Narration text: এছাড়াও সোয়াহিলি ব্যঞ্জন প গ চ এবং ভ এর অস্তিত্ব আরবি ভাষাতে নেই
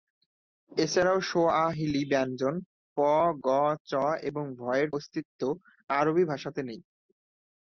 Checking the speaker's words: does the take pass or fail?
pass